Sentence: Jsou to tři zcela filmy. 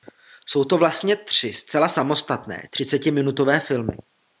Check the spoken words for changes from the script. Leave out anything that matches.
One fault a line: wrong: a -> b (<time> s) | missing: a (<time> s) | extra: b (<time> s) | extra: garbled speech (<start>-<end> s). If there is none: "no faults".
extra: vlastně (0.8 s)
extra: samostatné třicetiminutové (1.9 s)